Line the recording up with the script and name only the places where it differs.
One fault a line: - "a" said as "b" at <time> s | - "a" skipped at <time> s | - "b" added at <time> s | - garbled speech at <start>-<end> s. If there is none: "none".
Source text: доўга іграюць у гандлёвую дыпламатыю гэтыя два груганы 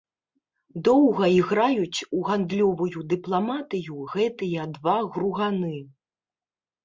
none